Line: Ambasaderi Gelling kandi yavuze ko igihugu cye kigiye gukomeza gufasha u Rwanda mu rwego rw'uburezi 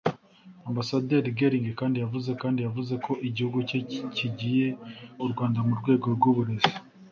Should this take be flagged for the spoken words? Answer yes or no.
yes